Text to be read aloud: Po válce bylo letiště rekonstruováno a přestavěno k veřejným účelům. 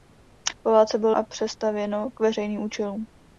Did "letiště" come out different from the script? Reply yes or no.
yes